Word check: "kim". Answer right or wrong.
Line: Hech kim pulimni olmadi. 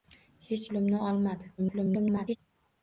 wrong